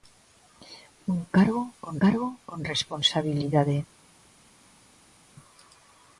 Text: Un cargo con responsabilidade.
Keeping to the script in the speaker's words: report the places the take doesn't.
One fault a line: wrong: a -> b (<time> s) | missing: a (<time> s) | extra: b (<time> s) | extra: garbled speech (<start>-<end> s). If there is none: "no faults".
extra: cargo con (2.0 s)